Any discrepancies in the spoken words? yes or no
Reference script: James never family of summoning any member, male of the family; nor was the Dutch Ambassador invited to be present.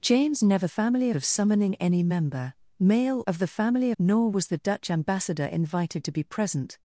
no